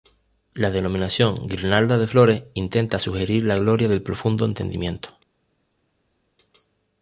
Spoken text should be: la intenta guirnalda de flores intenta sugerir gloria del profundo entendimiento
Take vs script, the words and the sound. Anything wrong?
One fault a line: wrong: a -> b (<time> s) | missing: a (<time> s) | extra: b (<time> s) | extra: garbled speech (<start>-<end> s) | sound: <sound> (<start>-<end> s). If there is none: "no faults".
wrong: intenta -> denominación (0.7 s)
extra: la (3.4 s)